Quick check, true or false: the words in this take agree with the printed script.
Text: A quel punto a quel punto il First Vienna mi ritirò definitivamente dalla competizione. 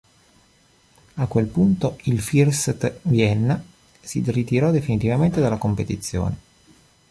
false